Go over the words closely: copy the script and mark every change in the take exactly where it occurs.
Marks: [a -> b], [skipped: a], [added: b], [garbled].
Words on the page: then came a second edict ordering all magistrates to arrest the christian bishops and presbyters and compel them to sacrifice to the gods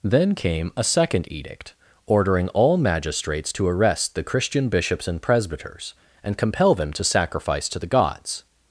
then came a second edict ordering all magistrates to arrest the christian bishops and presbyters and compel them to sacrifice to the gods